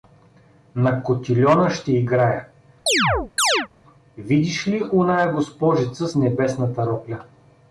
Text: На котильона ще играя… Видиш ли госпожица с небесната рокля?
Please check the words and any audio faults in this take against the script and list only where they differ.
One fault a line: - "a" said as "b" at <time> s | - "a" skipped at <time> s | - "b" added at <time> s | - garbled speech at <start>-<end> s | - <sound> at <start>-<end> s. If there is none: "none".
- chirp at 2.9-3.7 s
- "оная" added at 4.9 s